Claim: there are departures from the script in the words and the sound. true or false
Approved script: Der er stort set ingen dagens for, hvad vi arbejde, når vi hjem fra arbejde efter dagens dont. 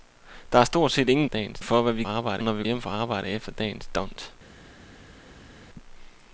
false